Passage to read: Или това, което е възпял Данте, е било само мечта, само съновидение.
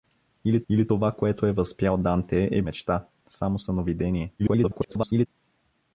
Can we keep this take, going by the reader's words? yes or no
no